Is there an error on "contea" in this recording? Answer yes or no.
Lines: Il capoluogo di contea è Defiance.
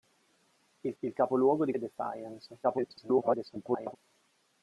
yes